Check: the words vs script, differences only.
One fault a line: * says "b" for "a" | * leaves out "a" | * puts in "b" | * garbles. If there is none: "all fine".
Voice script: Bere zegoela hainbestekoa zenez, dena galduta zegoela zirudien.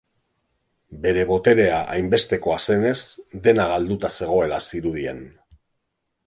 * says "boterea" for "zegoela"